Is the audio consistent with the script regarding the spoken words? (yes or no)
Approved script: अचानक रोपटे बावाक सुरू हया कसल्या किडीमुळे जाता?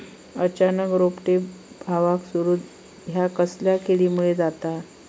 yes